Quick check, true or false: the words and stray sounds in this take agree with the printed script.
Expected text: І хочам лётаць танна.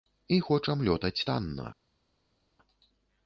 true